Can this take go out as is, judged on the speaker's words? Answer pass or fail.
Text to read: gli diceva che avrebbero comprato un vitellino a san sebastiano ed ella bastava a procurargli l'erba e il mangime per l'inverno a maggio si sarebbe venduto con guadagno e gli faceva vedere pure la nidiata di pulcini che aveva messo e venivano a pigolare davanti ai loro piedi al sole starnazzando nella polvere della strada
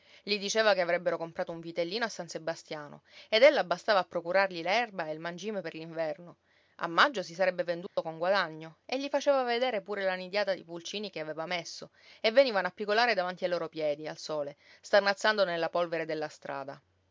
pass